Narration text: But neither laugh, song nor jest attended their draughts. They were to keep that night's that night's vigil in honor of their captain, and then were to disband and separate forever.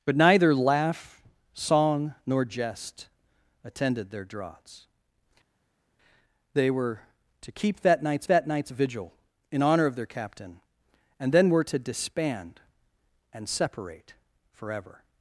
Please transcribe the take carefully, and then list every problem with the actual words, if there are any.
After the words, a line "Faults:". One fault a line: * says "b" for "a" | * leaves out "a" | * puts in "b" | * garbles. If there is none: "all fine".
But neither laugh, song nor jest attended their draughts. They were to keep that night's that night's vigil in honor of their captain, and then were to disband and separate forever.
Faults:
all fine